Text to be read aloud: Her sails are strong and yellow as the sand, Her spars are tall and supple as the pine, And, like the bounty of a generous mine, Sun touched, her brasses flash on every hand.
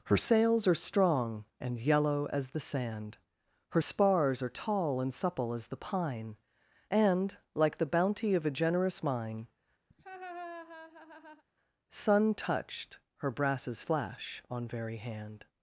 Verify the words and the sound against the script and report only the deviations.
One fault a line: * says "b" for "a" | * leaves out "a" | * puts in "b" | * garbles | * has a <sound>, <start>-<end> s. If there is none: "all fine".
* has a laugh, 9.9-11.4 s
* says "very" for "every"